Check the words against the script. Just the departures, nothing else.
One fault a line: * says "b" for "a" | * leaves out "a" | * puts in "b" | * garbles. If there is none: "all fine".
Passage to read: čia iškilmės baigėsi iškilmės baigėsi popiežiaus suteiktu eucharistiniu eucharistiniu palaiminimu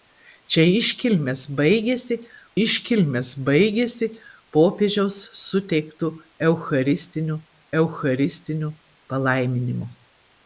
all fine